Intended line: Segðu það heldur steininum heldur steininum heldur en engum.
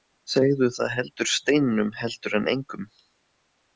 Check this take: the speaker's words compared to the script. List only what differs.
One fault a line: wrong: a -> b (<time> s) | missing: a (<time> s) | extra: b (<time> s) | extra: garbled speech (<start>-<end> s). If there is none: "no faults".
missing: steininum heldur (2.4 s)